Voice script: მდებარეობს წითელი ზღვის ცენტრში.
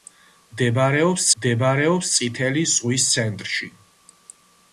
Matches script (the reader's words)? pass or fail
fail